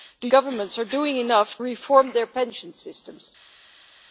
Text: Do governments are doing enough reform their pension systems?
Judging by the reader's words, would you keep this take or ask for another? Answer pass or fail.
pass